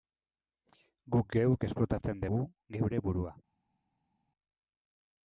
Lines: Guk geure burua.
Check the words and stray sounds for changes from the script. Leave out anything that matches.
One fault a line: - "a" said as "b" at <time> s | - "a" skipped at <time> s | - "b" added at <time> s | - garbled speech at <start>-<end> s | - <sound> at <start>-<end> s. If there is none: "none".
- "geuk esplotatzen dugu" added at 1.4 s